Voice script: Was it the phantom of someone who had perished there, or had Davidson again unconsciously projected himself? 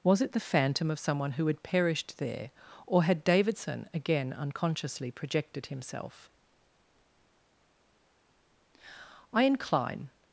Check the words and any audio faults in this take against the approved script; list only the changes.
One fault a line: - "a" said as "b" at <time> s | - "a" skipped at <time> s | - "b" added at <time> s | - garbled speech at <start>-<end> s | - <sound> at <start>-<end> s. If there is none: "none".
- "I incline" added at 9.3 s